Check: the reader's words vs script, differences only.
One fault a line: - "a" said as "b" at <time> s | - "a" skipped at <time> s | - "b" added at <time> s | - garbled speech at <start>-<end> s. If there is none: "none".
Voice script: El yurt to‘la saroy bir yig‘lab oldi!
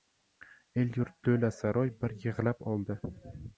none